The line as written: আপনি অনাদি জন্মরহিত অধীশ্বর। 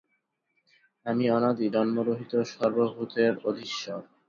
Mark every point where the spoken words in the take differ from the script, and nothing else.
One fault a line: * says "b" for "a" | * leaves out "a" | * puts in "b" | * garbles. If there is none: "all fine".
* says "আমি" for "আপনি"
* puts in "সর্বভূতের"